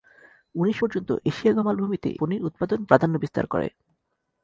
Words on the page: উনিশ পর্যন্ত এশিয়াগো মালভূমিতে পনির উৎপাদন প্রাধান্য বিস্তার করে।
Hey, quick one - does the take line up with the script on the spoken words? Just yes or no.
yes